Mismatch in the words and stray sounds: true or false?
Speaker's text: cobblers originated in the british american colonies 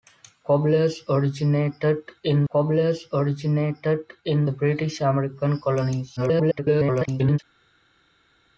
true